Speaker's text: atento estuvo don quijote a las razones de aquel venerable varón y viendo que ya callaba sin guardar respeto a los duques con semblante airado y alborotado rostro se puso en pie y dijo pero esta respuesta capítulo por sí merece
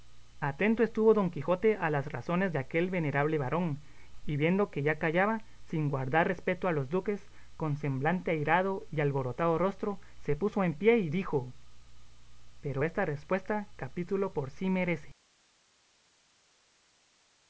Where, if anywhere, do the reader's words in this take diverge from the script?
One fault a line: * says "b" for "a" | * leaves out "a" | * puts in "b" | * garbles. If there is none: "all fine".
all fine